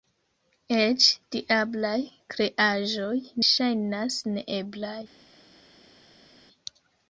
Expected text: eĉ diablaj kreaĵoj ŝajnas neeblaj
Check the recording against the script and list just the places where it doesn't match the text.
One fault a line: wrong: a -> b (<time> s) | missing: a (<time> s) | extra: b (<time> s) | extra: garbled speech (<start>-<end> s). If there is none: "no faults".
no faults